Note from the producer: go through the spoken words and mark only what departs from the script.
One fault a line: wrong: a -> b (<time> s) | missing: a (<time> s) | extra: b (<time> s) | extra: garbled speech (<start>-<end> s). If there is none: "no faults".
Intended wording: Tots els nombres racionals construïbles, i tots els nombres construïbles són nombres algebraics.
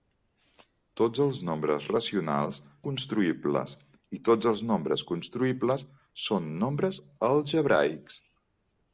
no faults